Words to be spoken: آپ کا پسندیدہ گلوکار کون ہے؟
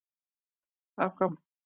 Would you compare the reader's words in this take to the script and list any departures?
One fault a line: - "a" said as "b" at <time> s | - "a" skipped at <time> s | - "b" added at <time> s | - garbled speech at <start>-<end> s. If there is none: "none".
- "پسندیدہ گلوکار کون" skipped at 1.2 s